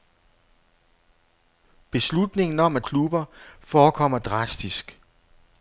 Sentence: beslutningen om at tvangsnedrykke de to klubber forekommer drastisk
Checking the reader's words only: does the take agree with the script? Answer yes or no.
no